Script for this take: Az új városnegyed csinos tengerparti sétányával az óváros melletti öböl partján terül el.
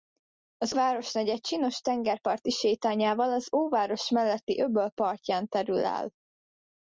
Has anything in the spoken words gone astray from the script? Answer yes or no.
yes